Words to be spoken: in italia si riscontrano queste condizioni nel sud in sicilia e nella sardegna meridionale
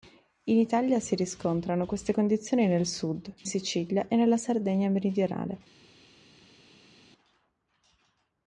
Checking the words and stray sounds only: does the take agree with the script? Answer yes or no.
no